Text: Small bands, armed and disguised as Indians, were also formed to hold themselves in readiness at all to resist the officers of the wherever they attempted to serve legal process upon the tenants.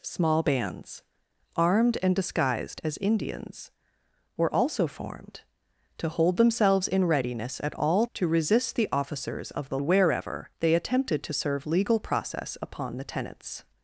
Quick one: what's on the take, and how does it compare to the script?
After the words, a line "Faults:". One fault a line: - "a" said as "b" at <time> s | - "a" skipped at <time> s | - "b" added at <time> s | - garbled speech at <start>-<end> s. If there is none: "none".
Small bands, armed and disguised as Indians, were also formed to hold themselves in readiness at all to resist the officers of the wherever they attempted to serve legal process upon the tenants.
Faults:
none